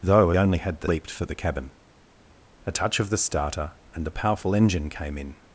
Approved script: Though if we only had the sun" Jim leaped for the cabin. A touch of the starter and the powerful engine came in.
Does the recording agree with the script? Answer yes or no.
no